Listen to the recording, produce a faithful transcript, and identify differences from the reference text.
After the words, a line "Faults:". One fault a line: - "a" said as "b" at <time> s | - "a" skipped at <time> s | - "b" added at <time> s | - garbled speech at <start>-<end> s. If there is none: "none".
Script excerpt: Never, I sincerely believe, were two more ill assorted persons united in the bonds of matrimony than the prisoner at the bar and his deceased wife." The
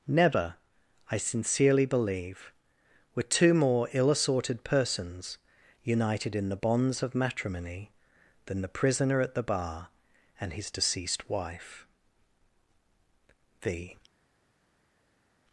Never, I sincerely believe, were two more ill assorted persons united in the bonds of matrimony than the prisoner at the bar and his deceased wife." The
Faults:
none